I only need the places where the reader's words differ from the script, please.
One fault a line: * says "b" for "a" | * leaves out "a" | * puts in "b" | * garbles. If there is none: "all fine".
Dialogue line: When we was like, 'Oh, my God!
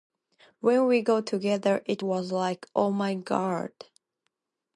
* puts in "got together it"